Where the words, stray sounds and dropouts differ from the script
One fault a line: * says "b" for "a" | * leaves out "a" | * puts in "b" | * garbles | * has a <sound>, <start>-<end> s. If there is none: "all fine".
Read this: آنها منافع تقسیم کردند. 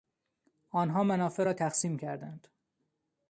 * puts in "را"